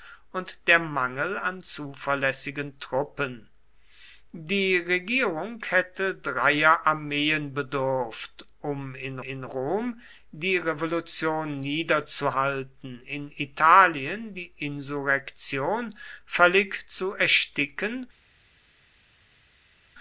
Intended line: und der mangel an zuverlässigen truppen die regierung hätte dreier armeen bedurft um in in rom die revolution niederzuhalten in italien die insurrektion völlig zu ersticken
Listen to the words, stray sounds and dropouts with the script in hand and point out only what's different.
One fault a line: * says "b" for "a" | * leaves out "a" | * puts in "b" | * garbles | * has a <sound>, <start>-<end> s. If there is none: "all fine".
all fine